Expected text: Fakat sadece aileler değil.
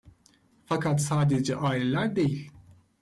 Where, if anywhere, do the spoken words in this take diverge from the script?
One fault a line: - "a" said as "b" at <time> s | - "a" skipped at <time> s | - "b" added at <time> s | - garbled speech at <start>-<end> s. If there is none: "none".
none